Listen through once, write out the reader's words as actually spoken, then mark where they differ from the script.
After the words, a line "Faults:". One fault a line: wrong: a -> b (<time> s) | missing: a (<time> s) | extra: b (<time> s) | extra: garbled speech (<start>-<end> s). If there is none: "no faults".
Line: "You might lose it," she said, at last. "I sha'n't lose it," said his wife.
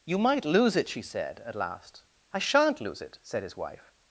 "You might lose it," she said, at last. "I sha'n't lose it," said his wife.
Faults:
no faults